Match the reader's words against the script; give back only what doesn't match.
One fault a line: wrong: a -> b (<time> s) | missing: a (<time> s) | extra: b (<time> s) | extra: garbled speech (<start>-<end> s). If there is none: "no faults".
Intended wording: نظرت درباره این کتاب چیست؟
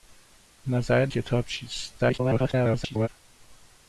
missing: درباره این (1.1 s)
extra: garbled speech (2.0-3.1 s)